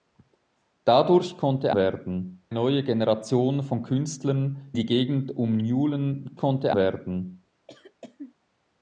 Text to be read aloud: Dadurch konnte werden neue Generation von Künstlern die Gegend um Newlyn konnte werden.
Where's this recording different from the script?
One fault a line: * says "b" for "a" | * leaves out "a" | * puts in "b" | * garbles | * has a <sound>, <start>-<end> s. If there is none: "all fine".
* has a cough, 7.7-8.3 s